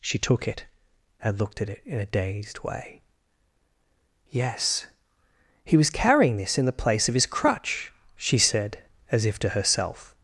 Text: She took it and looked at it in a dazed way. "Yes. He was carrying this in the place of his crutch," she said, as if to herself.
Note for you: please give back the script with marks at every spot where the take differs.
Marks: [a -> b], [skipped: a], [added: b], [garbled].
She took it and looked at it in a dazed way. "Yes. He was carrying this in the place of his crutch," she said, as if to herself.